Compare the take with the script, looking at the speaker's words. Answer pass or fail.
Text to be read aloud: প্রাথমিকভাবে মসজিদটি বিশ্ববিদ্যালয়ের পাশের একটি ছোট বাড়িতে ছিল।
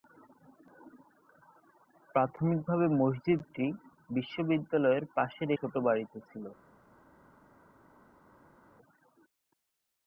fail